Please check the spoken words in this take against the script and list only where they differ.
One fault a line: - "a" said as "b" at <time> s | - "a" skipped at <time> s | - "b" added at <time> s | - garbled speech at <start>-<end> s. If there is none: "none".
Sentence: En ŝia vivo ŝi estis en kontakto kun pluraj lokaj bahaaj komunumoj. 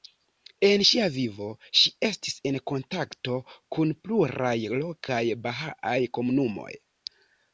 none